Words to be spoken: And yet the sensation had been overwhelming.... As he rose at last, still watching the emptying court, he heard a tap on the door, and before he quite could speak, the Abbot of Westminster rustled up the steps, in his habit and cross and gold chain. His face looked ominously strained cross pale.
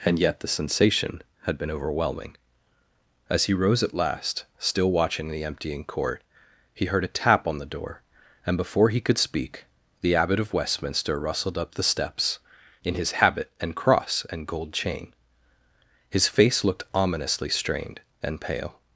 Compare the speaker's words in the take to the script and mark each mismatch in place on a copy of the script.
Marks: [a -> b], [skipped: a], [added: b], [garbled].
And yet the sensation had been overwhelming.... As he rose at last, still watching the emptying court, he heard a tap on the door, and before he [skipped: quite] could speak, the Abbot of Westminster rustled up the steps, in his habit and cross and gold chain. His face looked ominously strained [cross -> and] pale.